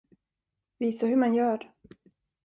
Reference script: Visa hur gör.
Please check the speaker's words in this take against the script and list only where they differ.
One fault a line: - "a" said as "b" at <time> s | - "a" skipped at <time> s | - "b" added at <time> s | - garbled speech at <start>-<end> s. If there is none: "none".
- "man" added at 1.1 s